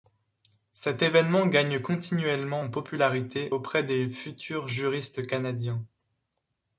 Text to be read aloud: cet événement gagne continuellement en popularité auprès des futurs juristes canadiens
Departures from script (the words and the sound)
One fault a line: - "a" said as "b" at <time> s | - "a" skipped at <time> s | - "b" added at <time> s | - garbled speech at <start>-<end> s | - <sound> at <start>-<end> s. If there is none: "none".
none